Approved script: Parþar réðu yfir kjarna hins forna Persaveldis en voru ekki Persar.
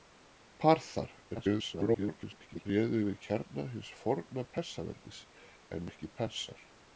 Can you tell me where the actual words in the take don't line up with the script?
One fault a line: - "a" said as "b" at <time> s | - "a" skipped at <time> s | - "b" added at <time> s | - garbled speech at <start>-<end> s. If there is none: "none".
- garbled speech at 1.3-2.7 s
- "voru" skipped at 5.9 s